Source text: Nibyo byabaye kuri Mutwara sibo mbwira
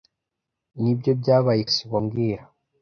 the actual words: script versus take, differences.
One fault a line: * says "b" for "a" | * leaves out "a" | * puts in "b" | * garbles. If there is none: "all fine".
* leaves out "kuri Mutwara"